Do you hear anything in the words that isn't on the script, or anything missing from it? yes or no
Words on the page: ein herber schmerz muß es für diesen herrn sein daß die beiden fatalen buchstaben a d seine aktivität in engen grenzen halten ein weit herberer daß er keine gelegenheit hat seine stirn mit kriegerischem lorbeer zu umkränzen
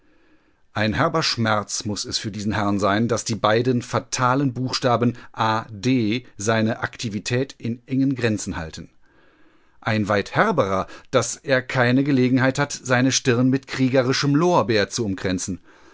no